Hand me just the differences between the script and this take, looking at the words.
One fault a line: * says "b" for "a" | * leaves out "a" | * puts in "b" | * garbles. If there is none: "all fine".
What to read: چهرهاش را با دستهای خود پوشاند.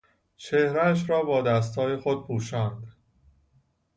all fine